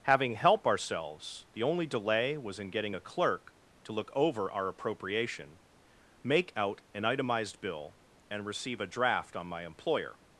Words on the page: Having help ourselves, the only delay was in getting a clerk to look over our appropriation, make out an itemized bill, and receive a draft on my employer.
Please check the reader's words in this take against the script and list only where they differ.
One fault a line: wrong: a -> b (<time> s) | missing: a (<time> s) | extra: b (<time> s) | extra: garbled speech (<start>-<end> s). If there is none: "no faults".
no faults